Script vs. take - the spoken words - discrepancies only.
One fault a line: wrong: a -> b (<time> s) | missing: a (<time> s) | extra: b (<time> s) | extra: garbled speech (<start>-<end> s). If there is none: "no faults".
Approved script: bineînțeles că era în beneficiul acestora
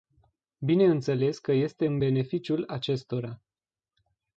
wrong: era -> este (1.5 s)